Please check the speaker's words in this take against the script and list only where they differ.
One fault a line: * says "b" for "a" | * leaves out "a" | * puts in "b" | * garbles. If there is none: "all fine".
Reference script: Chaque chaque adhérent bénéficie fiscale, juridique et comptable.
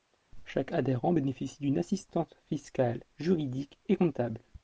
* leaves out "chaque"
* puts in "d'une assistance"